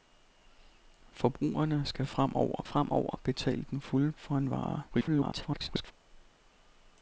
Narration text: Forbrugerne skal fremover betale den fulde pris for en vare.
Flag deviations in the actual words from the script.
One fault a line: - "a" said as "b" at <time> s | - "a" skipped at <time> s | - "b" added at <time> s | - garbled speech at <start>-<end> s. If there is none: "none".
- "fremover" added at 2.6 s
- "pris" skipped at 4.1 s
- garbled speech at 4.9-5.9 s